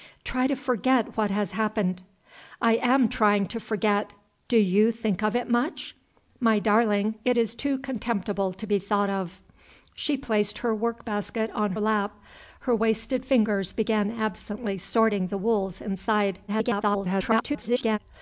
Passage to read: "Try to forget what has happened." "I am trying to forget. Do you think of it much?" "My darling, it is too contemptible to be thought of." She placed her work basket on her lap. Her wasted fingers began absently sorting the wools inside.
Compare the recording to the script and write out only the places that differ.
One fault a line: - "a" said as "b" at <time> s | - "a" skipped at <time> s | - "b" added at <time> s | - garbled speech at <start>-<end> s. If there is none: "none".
- "her" skipped at 11.7 s
- garbled speech at 16.5-18.0 s